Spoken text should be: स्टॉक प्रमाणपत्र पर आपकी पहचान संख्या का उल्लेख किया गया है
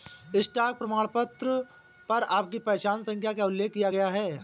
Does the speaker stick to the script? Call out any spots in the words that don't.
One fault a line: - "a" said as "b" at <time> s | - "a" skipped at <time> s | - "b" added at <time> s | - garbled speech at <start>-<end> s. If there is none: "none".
none